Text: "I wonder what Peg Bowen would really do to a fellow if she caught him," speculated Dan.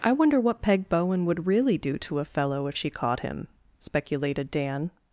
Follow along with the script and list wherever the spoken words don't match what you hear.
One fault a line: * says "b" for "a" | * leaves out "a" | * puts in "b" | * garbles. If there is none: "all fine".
all fine